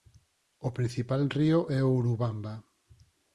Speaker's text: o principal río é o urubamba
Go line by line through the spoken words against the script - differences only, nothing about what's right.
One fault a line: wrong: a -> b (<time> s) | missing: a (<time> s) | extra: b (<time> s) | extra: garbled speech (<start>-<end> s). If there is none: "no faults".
no faults